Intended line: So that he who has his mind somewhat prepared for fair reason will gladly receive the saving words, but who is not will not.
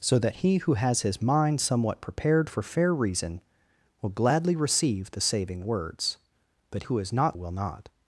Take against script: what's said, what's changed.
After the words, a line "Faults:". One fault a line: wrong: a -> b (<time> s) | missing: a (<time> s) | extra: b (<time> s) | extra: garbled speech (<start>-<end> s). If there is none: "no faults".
So that he who has his mind somewhat prepared for fair reason will gladly receive the saving words, but who is not will not.
Faults:
no faults